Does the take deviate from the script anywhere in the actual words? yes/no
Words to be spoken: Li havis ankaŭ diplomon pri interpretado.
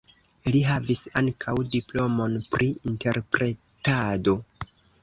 no